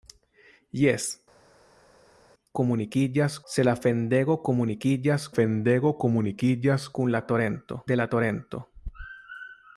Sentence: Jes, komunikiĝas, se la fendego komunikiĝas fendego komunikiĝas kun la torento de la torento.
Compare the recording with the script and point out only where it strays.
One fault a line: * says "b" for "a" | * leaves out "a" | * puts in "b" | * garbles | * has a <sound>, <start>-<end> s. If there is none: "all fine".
all fine